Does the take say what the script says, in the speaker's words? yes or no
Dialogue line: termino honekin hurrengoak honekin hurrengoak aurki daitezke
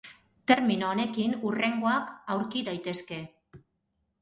no